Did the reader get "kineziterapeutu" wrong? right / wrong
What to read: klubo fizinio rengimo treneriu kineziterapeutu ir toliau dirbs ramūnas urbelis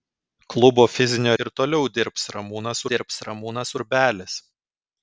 wrong